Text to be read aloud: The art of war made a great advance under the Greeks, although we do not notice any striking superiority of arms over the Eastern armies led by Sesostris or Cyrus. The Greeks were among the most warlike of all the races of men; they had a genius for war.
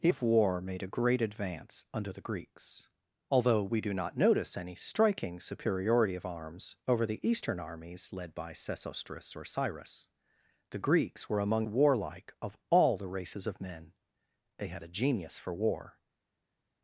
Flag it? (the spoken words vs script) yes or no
yes